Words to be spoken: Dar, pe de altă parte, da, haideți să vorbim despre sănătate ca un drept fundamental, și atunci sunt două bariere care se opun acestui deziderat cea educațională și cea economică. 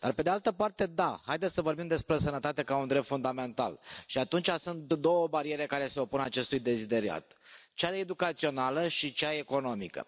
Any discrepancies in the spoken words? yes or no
no